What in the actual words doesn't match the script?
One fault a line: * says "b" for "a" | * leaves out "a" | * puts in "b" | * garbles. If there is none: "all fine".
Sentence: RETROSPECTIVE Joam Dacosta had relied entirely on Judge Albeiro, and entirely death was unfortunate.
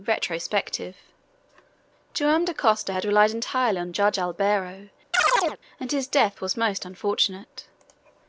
* says "his" for "entirely"
* puts in "most"